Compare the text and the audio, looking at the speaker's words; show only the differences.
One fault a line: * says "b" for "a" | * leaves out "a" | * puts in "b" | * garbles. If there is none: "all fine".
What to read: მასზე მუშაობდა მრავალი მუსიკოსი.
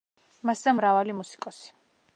* leaves out "მუშაობდა"